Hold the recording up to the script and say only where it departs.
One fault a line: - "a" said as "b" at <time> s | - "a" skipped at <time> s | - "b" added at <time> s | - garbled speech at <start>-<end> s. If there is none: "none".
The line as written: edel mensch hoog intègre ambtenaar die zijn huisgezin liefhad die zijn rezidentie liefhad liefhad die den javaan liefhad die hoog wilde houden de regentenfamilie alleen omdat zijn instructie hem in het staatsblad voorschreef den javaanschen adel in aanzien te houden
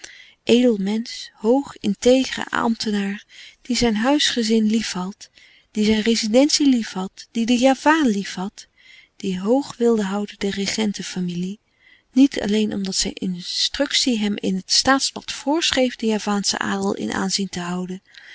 - "liefhad" skipped at 7.3 s
- "niet" added at 12.1 s